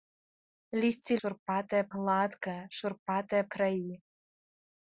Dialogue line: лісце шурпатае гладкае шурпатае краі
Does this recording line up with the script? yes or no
yes